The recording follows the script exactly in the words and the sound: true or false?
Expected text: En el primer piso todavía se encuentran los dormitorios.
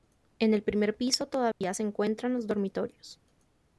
false